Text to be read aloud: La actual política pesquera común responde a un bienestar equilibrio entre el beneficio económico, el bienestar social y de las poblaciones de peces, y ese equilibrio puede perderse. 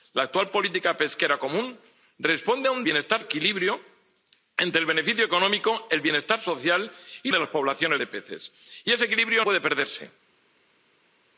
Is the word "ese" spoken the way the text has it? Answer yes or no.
yes